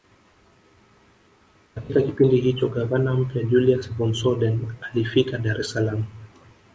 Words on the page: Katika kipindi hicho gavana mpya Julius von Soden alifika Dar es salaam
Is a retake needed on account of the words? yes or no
no